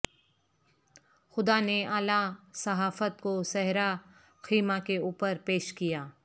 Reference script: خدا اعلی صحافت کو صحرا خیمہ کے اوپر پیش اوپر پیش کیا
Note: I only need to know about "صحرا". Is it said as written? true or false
true